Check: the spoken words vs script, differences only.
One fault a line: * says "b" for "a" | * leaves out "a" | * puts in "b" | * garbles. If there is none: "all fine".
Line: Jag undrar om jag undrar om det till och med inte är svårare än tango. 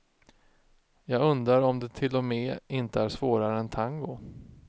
* leaves out "jag undrar om"